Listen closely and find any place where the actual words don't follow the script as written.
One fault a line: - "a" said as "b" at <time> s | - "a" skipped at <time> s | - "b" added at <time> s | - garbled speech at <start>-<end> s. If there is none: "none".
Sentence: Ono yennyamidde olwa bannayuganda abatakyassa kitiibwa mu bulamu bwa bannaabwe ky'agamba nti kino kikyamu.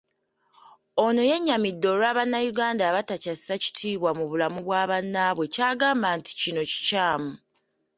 none